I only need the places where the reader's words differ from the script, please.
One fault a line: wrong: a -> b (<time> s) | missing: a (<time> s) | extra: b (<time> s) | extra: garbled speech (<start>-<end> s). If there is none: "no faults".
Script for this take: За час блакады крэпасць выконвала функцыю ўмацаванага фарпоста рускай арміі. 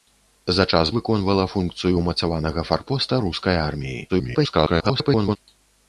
missing: блакады крэпасць (0.9 s)
extra: garbled speech (4.1-5.4 s)